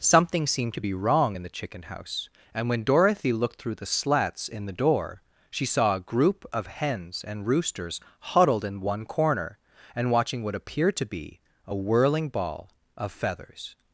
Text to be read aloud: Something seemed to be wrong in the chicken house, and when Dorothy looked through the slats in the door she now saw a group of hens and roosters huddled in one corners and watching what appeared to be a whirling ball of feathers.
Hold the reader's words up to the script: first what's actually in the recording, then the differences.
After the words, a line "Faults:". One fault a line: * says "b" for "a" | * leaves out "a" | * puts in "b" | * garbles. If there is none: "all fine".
Something seemed to be wrong in the chicken house, and when Dorothy looked through the slats in the door she saw a group of hens and roosters huddled in one corner and watching what appeared to be a whirling ball of feathers.
Faults:
* leaves out "now"
* says "corner" for "corners"